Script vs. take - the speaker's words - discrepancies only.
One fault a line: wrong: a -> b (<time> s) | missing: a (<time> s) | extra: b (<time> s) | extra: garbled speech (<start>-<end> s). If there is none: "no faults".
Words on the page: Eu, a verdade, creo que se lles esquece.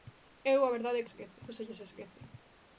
wrong: creo -> esquece (1.1 s)